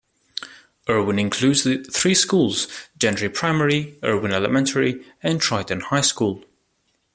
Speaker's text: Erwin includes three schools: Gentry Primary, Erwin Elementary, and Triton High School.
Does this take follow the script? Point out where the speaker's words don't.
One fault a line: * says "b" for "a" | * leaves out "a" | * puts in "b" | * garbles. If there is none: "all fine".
all fine